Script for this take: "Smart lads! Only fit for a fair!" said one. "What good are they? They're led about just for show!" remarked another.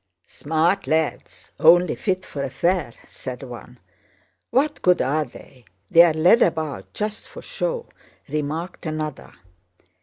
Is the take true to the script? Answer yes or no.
yes